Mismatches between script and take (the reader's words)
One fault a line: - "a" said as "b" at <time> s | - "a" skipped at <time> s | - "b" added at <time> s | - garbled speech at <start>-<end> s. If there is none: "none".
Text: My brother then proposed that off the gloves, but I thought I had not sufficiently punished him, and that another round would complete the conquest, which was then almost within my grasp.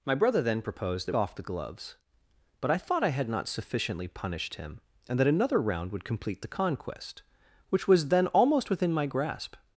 none